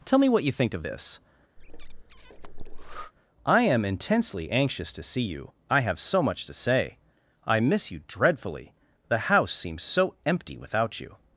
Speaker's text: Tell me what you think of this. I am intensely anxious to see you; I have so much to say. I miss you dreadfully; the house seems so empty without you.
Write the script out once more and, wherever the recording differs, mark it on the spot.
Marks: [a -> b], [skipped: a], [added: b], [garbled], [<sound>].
Tell me what you think of this. [breath] I am intensely anxious to see you; I have so much to say. I miss you dreadfully; the house seems so empty without you.